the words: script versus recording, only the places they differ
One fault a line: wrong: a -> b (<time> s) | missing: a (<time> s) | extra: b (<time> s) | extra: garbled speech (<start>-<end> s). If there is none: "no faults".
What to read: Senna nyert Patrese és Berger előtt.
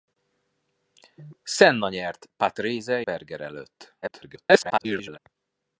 missing: és (3.0 s)
extra: garbled speech (4.0-5.2 s)